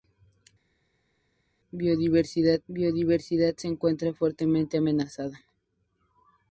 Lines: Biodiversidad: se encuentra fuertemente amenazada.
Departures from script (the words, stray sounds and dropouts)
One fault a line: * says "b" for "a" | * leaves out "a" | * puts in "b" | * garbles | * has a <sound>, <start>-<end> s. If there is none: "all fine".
* puts in "biodiversidad"